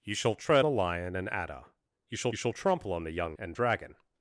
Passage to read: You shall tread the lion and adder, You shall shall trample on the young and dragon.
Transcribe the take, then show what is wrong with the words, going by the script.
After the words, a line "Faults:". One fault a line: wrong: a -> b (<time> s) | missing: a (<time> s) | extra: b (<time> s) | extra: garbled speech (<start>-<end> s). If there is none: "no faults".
You shall tread the lion and adder, You shall shall trample on the young and dragon.
Faults:
no faults